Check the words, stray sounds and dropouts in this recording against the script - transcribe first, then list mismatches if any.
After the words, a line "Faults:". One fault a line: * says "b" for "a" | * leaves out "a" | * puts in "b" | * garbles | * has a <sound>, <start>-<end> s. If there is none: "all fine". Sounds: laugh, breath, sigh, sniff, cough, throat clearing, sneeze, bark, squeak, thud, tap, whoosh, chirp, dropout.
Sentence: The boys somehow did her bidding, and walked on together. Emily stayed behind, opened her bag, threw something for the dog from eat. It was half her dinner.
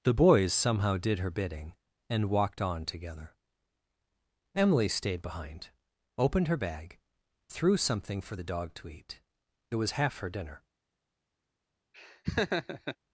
The boys somehow did her bidding, and walked on together. Emily stayed behind, opened her bag, threw something for the dog to eat. It was half her dinner.
Faults:
* says "to" for "from"
* has a laugh, 11.9-13.0 s